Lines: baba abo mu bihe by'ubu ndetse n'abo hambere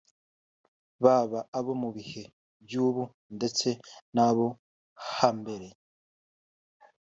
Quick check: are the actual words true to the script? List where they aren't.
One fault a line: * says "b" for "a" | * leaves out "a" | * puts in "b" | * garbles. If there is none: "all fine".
all fine